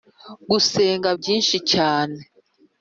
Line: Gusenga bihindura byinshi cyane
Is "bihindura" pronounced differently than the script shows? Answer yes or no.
yes